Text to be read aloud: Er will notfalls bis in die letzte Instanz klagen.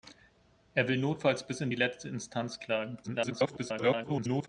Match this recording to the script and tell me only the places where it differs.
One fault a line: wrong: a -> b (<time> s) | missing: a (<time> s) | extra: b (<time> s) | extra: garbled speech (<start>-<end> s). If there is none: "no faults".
extra: garbled speech (3.0-4.5 s)